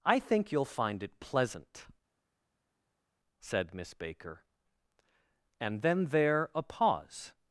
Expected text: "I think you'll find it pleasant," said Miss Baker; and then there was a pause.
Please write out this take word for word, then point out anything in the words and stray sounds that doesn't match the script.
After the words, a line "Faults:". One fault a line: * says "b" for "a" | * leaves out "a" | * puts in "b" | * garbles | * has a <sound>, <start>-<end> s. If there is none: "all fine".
"I think you'll find it pleasant," said Miss Baker; and then there a pause.
Faults:
* leaves out "was"